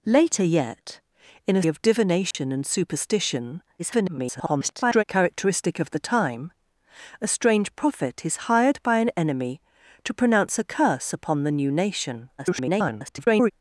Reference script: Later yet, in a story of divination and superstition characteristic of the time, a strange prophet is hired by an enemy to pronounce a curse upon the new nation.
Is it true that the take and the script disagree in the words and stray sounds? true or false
true